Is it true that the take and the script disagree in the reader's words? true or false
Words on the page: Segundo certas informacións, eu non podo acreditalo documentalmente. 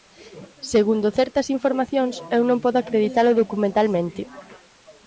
false